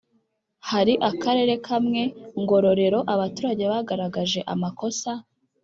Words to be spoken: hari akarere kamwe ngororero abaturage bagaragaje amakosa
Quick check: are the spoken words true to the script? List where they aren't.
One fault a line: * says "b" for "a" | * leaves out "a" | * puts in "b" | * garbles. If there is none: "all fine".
all fine